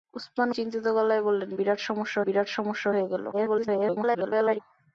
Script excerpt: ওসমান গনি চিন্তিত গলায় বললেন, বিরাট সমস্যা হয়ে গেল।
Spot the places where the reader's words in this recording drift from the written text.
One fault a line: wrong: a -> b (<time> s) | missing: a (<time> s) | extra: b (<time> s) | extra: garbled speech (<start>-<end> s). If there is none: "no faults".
missing: গনি (0.5 s)
extra: বিরাট সমস্যা (2.2 s)
extra: garbled speech (3.3-4.6 s)